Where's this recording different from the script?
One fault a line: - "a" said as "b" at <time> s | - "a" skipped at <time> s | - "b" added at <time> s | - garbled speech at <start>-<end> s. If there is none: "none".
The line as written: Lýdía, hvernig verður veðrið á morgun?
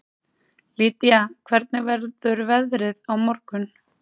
none